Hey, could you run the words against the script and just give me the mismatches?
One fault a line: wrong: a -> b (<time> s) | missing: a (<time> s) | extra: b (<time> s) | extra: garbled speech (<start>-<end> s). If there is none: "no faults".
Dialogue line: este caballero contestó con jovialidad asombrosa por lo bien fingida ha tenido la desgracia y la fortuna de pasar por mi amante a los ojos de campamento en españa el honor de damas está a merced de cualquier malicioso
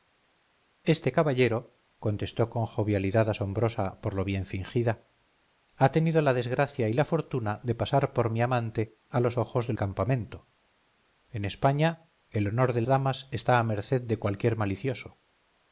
no faults